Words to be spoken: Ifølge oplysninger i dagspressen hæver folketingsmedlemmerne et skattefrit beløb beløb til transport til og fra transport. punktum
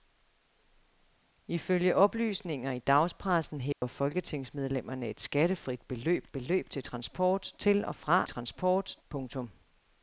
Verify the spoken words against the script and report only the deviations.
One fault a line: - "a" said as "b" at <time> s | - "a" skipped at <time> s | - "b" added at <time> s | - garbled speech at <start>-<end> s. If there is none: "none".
none